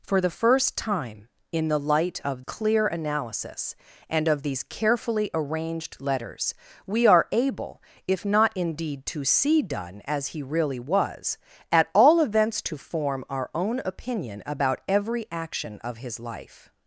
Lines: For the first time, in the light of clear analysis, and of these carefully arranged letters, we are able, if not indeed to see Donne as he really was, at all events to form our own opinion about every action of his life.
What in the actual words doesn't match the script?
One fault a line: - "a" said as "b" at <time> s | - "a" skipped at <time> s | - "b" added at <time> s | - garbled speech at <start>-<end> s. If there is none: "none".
none